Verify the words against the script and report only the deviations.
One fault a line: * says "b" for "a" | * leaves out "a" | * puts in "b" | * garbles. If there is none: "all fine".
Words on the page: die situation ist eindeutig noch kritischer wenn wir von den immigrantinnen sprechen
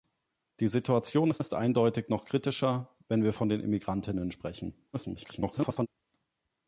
* puts in "ist"
* garbles